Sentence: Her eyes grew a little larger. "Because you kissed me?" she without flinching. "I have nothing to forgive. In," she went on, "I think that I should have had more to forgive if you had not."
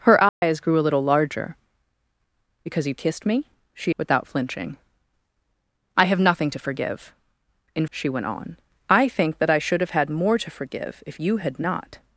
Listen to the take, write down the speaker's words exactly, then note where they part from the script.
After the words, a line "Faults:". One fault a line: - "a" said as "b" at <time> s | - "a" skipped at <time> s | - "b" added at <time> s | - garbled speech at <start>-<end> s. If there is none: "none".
Her eyes grew a little larger. "Because you kissed me?" she without flinching. "I have nothing to forgive. In," she went on, "I think that I should have had more to forgive if you had not."
Faults:
none